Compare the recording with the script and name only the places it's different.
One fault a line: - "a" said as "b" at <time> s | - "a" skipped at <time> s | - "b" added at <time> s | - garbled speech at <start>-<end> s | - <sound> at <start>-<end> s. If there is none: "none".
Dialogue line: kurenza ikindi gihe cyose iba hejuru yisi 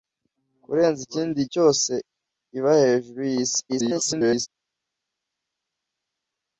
- "gihe" skipped at 1.4 s
- garbled speech at 3.7-4.5 s